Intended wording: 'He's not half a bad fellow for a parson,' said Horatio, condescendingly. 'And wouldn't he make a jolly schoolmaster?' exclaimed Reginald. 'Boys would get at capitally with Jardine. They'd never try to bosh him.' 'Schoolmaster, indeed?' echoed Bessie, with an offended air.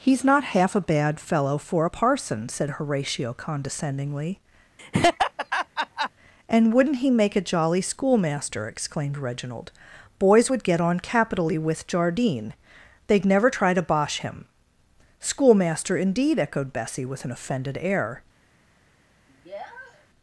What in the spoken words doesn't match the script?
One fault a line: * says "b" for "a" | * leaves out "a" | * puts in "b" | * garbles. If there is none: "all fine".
* says "on" for "at"